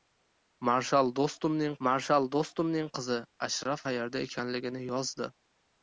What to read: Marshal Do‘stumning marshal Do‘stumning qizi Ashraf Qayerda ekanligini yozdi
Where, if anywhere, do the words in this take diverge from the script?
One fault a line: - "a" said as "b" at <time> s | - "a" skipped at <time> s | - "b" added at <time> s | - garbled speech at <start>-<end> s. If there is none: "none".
none